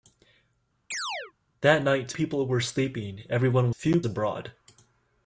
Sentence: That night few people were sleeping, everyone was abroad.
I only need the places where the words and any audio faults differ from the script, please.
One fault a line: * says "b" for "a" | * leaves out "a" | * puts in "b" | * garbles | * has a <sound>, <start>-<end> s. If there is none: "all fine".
* has a chirp, 0.9-1.3 s
* leaves out "few"
* says "few" for "was"